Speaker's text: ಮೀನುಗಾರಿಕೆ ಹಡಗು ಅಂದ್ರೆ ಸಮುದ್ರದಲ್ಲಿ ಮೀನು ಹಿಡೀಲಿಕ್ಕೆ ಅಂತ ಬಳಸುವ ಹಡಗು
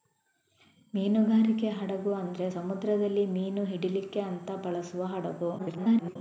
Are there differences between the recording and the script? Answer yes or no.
yes